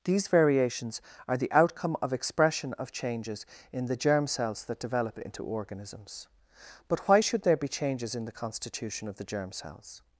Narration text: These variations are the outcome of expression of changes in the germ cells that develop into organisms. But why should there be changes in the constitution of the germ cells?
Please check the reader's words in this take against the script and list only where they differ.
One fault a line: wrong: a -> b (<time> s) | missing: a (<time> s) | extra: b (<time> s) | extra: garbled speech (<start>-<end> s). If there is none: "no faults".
no faults